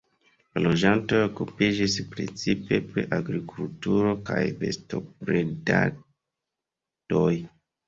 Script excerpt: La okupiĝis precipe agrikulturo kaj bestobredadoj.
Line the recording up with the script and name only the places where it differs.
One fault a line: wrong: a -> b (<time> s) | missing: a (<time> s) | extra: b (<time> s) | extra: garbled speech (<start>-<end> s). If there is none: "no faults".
extra: loĝantoj (0.7 s)
extra: pri (2.9 s)